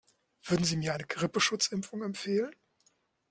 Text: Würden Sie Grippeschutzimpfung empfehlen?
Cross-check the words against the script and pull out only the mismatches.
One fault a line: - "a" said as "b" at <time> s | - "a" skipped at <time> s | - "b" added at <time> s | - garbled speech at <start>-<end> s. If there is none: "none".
- "mir eine" added at 0.8 s